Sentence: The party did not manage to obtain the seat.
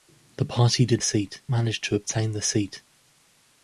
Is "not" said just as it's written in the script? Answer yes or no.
no